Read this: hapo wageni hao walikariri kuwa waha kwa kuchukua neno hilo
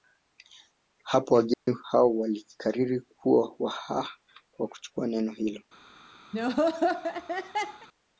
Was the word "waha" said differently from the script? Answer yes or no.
yes